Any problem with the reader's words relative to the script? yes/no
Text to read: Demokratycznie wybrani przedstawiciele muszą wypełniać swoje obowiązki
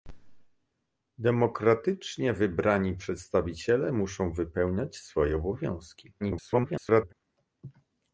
yes